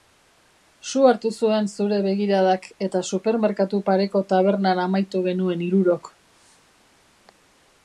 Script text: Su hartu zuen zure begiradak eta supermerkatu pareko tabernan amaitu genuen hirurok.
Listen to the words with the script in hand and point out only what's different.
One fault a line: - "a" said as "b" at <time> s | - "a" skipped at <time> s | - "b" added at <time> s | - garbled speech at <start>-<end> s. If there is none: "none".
none